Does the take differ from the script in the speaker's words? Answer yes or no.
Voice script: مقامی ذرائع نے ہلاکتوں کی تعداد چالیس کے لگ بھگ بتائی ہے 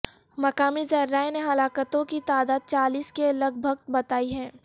no